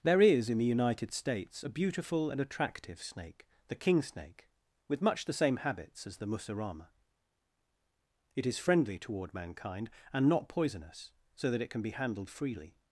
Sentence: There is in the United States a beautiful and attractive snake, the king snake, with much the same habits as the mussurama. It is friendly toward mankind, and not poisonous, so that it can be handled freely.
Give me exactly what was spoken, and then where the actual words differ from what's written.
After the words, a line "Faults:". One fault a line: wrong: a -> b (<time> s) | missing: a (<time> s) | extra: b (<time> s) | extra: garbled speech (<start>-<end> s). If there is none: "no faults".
There is in the United States a beautiful and attractive snake, the king snake, with much the same habits as the mussurama. It is friendly toward mankind, and not poisonous, so that it can be handled freely.
Faults:
no faults